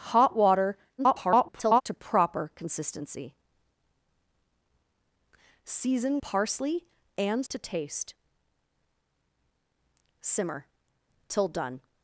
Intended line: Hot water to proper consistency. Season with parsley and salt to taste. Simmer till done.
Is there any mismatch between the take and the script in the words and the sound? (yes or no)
yes